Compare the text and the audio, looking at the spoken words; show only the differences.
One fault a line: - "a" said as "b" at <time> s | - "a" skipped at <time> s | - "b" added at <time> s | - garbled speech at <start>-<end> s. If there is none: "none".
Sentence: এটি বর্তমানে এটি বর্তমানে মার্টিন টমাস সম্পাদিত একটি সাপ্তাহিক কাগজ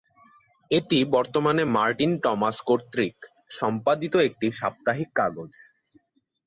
- "এটি বর্তমানে" skipped at 1.6 s
- "কর্তৃক" added at 2.7 s